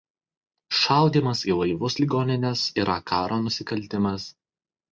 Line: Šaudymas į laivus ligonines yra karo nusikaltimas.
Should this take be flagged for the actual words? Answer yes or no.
no